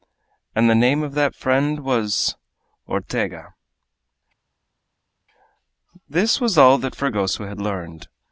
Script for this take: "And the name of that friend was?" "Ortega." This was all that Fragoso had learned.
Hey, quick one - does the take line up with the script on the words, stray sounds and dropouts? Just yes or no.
yes